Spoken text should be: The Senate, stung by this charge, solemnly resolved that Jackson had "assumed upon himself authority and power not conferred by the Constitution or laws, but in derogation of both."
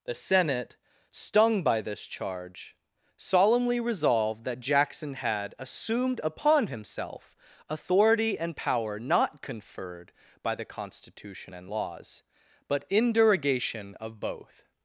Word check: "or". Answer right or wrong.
wrong